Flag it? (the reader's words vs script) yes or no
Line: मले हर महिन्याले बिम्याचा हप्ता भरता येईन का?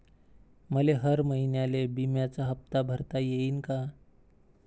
no